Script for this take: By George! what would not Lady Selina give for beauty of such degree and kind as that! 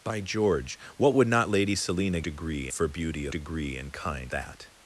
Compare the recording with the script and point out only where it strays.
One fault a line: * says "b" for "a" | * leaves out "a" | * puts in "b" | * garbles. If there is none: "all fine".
* says "degree" for "give"
* leaves out "such"
* leaves out "as"